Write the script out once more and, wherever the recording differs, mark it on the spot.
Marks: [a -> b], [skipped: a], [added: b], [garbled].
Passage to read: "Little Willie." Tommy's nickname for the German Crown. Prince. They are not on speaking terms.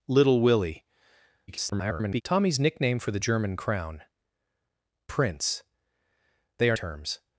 "Little Willie." [garbled] Tommy's nickname for the German Crown. Prince. They are [skipped: not on speaking] terms.